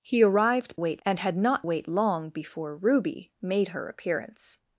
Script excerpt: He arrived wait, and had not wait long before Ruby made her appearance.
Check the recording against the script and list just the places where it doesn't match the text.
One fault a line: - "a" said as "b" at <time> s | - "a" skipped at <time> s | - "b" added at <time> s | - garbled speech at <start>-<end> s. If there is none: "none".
none